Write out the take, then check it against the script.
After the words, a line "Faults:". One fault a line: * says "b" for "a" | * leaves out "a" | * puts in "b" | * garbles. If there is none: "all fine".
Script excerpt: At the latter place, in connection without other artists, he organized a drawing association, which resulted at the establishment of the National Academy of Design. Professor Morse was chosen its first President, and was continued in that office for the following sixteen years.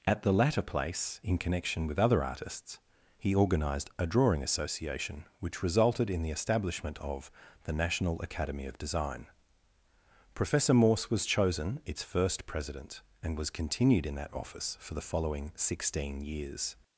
At the latter place, in connection with other artists, he organized a drawing association, which resulted in the establishment of the National Academy of Design. Professor Morse was chosen its first President, and was continued in that office for the following sixteen years.
Faults:
* says "with" for "without"
* says "in" for "at"